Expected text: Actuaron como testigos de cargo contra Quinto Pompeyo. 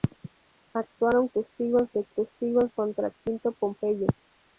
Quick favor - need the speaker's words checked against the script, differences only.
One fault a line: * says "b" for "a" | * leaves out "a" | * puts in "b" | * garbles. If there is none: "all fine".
* leaves out "como"
* says "testigos" for "cargo"